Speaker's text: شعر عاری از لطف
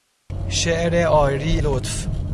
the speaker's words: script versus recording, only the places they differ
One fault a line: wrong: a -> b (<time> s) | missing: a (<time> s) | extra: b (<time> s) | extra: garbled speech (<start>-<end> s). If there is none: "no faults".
missing: از (1.6 s)